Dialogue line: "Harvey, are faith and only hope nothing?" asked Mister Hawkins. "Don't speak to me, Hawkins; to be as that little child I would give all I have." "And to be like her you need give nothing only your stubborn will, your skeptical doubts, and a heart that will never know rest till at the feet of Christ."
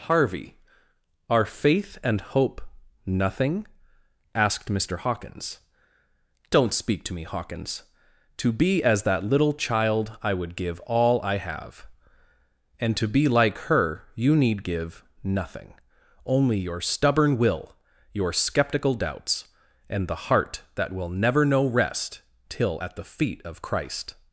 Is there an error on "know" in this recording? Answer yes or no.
no